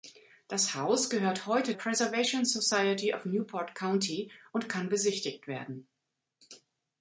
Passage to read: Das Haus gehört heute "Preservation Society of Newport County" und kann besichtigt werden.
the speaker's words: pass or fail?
pass